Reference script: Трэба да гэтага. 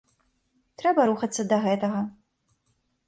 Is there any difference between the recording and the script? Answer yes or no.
yes